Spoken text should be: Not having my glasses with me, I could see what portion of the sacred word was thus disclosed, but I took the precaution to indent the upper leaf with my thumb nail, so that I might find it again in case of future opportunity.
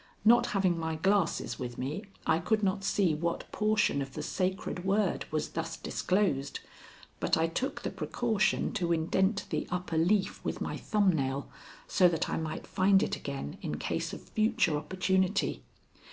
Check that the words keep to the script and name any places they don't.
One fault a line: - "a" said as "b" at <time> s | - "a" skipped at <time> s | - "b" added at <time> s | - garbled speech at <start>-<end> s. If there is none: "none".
- "not" added at 2.6 s